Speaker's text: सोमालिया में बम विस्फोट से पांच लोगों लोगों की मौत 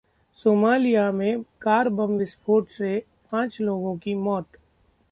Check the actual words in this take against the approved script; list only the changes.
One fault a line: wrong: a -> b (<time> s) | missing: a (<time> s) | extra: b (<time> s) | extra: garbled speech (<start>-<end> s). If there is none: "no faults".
extra: कार (1.6 s)
missing: लोगों (4.0 s)